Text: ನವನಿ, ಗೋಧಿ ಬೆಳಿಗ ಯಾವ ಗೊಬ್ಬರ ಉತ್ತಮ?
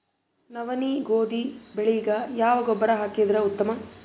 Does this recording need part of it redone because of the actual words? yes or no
yes